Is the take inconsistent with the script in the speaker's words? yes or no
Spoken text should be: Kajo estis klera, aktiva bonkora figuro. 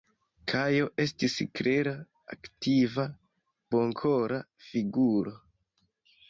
no